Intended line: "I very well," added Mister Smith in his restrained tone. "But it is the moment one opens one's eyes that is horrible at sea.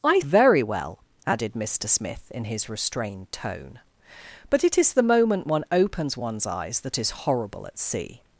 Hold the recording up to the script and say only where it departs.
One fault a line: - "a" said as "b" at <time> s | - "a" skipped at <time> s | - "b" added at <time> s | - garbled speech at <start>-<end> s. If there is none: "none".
none